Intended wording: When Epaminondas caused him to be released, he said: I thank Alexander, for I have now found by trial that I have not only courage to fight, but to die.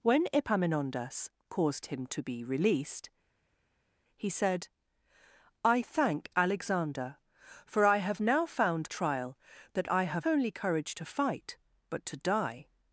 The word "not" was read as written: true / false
false